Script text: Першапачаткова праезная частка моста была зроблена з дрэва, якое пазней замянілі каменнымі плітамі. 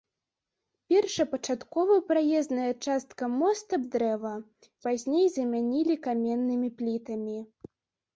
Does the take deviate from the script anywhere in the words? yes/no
yes